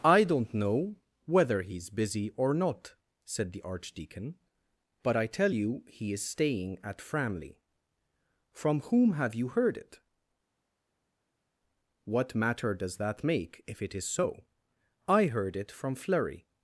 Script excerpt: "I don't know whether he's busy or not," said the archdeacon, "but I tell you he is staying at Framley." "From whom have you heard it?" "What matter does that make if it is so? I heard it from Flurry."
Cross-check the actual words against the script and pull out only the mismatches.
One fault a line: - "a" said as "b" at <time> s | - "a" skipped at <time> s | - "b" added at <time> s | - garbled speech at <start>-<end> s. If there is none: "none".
none